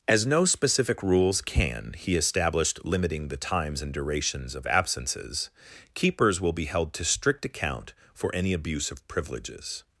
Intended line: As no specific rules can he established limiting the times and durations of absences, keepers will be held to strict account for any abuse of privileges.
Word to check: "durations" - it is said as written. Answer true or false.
true